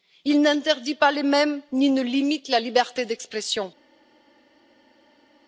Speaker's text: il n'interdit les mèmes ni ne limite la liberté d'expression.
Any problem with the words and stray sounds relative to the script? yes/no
yes